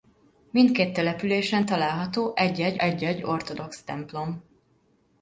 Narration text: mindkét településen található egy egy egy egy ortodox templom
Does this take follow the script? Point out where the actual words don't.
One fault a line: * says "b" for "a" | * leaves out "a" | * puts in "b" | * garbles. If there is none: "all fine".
all fine